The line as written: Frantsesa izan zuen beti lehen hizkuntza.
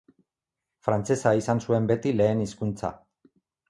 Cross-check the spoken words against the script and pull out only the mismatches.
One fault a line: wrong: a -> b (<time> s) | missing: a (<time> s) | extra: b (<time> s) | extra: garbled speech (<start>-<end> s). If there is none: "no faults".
no faults